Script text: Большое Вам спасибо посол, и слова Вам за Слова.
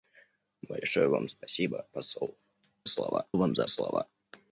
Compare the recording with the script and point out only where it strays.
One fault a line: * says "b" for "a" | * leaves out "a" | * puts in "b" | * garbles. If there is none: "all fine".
all fine